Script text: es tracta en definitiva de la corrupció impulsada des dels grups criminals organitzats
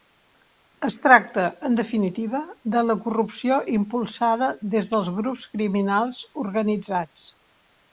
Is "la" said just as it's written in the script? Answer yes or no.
yes